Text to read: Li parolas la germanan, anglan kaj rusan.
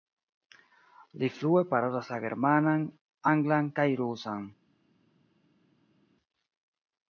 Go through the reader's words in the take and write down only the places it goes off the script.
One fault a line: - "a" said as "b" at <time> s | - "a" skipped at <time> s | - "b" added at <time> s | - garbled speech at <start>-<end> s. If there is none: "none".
- "flue" added at 1.4 s